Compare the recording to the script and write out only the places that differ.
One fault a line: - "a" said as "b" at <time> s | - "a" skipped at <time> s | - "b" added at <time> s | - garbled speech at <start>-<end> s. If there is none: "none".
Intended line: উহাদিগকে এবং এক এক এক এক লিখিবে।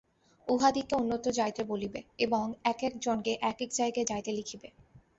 - "অন্যত্র যাইতে বলিবে" added at 0.9 s
- "জনকে" added at 3.0 s
- "জায়গায় যাইতে" added at 3.7 s